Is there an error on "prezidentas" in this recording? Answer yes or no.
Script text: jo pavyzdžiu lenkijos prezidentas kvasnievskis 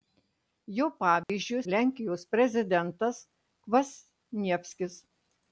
no